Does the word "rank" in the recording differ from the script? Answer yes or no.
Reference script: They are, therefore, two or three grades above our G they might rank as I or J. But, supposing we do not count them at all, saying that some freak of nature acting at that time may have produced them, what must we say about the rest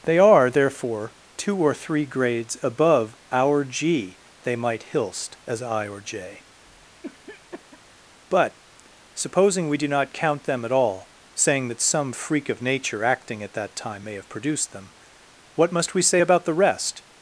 yes